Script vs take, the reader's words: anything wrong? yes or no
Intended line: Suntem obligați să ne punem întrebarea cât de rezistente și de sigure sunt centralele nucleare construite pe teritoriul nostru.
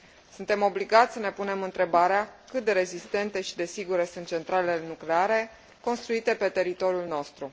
no